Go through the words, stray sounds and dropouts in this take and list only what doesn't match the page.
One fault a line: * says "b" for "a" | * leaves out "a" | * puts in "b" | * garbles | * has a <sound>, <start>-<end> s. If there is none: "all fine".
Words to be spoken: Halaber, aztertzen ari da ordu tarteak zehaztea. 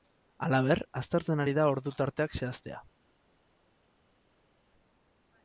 all fine